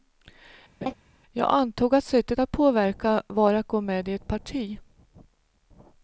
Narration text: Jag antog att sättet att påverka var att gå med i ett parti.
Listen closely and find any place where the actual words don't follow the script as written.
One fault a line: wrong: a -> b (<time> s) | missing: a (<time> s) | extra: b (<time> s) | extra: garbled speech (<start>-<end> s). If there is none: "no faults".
no faults